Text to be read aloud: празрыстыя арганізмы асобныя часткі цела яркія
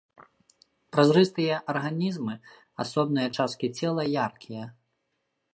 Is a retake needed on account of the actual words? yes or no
no